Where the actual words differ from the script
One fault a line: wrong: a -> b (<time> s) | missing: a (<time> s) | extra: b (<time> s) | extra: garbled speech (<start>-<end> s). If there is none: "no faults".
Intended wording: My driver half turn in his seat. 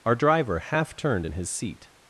wrong: My -> Our (0.0 s)
wrong: turn -> turned (0.9 s)